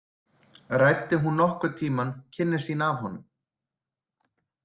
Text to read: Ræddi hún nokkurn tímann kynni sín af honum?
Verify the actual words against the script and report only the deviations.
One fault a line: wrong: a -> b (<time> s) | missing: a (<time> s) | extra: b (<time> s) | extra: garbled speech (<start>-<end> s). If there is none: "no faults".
no faults